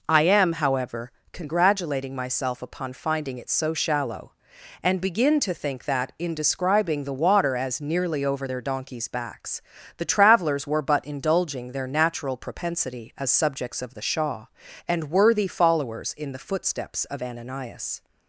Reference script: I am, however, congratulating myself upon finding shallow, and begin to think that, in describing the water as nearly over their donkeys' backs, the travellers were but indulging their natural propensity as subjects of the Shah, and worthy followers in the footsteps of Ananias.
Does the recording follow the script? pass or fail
fail